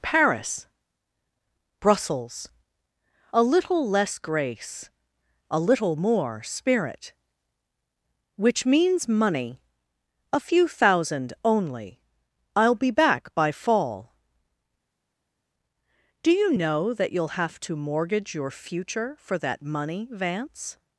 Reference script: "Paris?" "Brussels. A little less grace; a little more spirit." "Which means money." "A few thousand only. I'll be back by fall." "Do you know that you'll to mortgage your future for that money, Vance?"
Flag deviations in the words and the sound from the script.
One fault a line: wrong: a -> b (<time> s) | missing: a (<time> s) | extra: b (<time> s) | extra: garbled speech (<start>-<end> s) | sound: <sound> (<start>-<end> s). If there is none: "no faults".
extra: have (17.4 s)